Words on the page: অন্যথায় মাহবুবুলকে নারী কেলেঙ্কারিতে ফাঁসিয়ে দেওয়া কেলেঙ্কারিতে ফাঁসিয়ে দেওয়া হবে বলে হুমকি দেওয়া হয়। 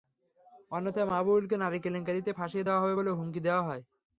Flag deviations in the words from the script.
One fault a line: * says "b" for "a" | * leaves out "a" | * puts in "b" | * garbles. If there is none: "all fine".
* leaves out "কেলেঙ্কারিতে ফাঁসিয়ে দেওয়া"